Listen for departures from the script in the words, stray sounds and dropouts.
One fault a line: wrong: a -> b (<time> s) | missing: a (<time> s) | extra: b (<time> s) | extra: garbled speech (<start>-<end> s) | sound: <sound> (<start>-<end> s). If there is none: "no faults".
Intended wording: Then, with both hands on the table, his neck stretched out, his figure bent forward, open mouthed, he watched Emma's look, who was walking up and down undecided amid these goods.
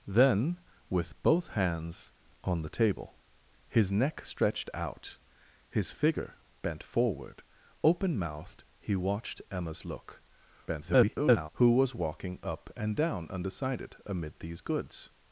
extra: garbled speech (10.7-11.5 s)